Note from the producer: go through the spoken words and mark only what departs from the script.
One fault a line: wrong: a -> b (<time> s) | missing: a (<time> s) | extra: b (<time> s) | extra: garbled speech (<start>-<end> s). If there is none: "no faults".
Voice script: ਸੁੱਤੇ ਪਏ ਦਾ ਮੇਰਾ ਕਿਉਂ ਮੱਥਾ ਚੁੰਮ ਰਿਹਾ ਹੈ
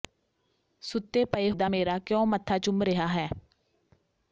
no faults